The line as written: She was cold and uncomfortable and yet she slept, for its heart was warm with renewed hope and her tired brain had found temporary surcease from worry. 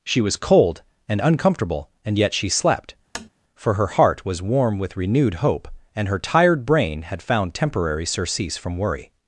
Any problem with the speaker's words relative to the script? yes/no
yes